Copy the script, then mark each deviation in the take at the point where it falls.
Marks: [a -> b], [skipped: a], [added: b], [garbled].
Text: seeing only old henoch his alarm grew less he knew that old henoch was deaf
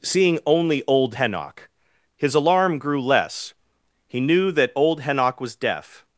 seeing only old henoch his alarm grew less he knew that old henoch was deaf